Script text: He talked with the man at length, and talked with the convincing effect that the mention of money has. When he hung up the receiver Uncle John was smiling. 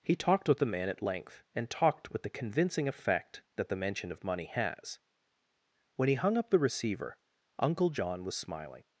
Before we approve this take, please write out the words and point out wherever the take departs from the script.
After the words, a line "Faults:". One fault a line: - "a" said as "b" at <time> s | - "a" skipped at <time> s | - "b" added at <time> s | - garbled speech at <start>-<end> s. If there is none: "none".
He talked with the man at length, and talked with the convincing effect that the mention of money has. When he hung up the receiver Uncle John was smiling.
Faults:
none